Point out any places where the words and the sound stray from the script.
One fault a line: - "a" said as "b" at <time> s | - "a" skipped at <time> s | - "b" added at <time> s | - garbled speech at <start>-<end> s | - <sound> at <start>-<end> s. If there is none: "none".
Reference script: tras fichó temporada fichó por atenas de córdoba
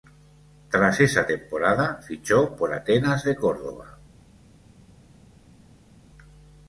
- "fichó" said as "esa" at 1.0 s